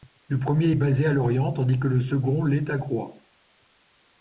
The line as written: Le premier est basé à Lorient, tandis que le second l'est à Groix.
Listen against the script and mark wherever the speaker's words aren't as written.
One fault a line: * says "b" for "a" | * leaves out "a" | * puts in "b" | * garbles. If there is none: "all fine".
all fine